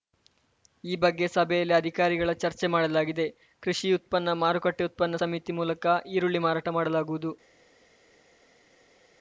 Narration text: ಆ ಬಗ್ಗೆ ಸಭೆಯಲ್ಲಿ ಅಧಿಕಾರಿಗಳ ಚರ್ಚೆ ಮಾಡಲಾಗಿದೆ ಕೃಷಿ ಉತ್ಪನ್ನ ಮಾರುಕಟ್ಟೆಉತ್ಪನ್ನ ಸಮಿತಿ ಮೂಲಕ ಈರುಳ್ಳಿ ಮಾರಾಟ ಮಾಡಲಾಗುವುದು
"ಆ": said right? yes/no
no